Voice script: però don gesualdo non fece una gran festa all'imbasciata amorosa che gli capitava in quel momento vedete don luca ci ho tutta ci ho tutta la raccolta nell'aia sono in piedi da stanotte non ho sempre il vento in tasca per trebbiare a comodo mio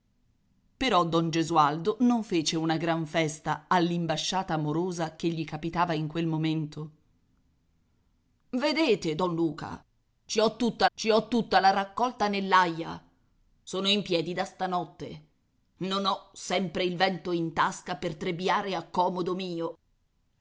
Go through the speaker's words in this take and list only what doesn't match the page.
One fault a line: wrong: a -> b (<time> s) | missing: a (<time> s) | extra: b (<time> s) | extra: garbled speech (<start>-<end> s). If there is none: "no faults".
no faults